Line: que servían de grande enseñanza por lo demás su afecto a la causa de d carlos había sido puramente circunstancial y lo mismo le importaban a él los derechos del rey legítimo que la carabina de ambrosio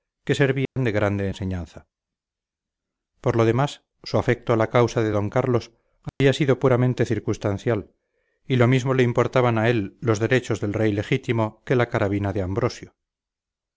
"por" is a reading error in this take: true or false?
false